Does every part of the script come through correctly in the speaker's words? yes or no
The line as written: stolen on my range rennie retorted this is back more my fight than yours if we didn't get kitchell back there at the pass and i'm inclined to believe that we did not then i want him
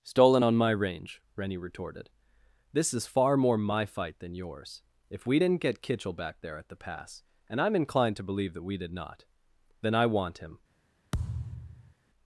no